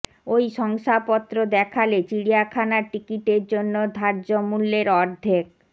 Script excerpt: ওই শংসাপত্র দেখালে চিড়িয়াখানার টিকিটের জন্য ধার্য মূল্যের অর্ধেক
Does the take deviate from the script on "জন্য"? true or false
false